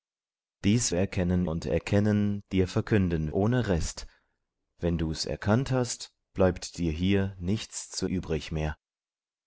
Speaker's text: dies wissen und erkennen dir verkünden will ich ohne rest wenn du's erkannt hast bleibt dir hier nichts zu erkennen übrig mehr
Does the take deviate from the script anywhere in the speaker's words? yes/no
yes